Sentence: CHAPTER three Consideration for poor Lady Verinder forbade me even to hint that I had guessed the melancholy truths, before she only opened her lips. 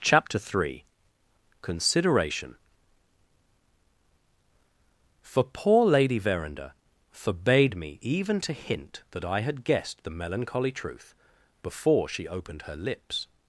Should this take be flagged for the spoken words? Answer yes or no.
yes